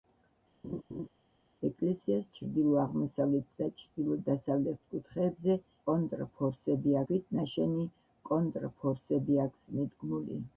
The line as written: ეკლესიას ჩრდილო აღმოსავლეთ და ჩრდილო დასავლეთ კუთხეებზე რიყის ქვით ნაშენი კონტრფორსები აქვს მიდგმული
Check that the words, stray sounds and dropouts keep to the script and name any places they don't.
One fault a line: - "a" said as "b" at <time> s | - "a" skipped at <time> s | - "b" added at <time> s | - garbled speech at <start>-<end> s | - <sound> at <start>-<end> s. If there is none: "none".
- laugh at 0.6-1.1 s
- "რიყის" said as "კონტრფორსები" at 5.9 s